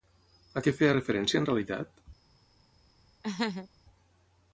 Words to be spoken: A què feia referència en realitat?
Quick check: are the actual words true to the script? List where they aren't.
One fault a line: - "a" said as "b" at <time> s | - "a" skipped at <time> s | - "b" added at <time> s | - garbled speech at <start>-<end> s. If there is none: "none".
none